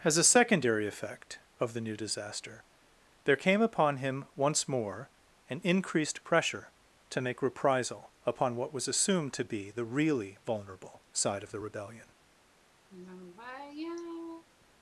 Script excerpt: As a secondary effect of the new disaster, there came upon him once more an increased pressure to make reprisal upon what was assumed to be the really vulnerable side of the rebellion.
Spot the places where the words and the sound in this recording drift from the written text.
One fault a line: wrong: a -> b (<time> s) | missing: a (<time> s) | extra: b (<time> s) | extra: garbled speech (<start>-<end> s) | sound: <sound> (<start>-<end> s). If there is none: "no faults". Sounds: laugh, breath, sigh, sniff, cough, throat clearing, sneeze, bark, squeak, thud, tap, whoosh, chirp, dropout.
sound: sigh (12.9-14.4 s)